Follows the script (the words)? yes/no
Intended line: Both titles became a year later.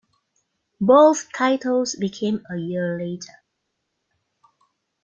yes